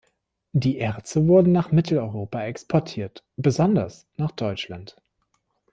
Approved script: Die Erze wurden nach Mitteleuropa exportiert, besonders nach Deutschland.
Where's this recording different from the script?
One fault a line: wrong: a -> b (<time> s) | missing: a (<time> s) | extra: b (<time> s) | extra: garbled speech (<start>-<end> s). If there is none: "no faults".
no faults